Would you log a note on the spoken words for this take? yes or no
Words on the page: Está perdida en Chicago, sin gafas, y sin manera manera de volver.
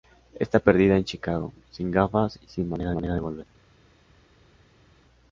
no